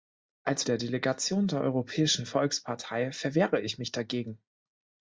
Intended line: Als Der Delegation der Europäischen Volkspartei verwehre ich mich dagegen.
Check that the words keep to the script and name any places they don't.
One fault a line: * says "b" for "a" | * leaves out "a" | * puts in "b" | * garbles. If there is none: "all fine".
all fine